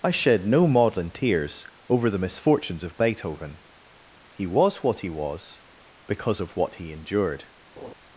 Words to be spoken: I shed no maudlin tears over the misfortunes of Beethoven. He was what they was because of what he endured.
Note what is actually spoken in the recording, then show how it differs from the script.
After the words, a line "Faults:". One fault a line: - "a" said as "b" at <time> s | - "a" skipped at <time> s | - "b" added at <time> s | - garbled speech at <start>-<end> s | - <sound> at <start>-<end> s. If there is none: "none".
I shed no maudlin tears over the misfortunes of Beethoven. He was what he was because of what he endured.
Faults:
- "they" said as "he" at 5.0 s
- laugh at 7.8-7.9 s